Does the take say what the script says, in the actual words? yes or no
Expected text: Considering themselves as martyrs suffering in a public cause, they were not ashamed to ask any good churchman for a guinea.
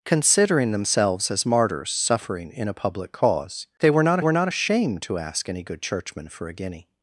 no